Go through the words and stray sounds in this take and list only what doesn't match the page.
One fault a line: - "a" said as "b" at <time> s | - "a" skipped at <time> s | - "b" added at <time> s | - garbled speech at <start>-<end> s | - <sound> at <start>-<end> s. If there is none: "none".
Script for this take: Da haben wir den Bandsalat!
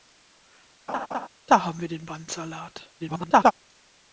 - laugh at 0.9-1.3 s
- garbled speech at 3.0-3.5 s